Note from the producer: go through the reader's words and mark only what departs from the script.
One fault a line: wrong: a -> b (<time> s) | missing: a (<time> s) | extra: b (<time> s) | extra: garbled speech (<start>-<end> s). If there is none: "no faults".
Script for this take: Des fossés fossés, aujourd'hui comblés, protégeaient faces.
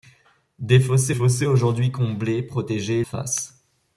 no faults